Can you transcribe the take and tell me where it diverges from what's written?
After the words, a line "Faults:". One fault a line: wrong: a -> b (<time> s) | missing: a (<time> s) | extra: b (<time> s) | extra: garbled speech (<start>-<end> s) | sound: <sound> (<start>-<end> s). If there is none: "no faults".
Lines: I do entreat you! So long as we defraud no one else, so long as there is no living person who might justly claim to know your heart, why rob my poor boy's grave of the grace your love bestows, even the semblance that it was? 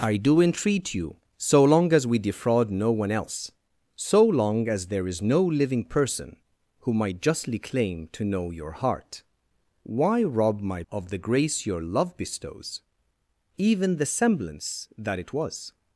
I do entreat you! So long as we defraud no one else, so long as there is no living person who might justly claim to know your heart, why rob my of the grace your love bestows, even the semblance that it was?
Faults:
missing: poor boy's grave (10.8 s)